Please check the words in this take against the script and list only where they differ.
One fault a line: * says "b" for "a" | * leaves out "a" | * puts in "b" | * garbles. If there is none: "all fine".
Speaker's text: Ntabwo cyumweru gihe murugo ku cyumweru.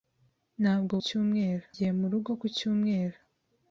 all fine